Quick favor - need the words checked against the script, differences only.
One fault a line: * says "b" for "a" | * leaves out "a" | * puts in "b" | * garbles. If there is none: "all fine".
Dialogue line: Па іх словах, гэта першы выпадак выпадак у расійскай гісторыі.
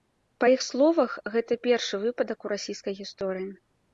* leaves out "выпадак"